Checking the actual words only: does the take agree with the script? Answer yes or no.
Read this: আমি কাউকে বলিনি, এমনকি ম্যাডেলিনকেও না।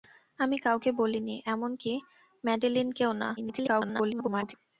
no